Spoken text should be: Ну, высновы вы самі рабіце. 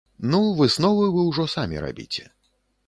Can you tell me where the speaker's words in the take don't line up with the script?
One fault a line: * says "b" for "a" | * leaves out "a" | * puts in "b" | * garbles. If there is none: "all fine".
* puts in "ўжо"